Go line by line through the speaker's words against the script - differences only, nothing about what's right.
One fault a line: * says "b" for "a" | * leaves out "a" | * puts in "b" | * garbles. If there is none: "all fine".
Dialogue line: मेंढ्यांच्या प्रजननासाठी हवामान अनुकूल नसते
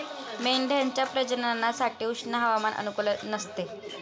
* puts in "उष्ण"